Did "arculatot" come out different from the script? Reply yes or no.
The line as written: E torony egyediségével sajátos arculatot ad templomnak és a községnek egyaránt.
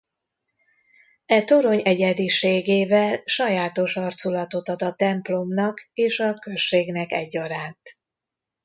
no